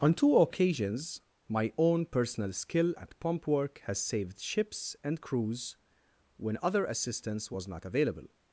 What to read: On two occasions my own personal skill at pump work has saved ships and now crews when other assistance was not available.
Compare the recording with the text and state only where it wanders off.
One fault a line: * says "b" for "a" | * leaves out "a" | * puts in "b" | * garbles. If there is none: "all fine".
* leaves out "now"